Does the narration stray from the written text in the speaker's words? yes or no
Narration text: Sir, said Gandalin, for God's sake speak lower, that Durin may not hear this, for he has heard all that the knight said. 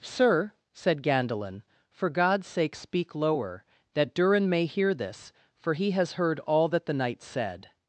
yes